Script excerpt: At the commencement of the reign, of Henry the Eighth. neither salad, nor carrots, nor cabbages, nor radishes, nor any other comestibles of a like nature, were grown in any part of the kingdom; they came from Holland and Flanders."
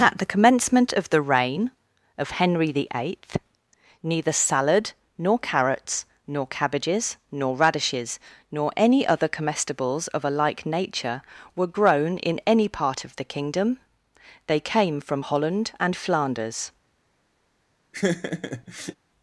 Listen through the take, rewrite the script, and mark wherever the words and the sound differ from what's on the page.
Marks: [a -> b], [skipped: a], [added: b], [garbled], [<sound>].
At the commencement of the reign, of Henry the Eighth. neither salad, nor carrots, nor cabbages, nor radishes, nor any other comestibles of a like nature, were grown in any part of the kingdom; they came from Holland and Flanders." [laugh]